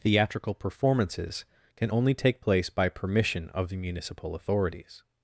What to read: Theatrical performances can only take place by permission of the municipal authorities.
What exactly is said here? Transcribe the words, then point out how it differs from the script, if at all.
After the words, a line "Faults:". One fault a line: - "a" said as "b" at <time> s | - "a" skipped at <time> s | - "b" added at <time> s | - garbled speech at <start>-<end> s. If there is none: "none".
Theatrical performances can only take place by permission of the municipal authorities.
Faults:
none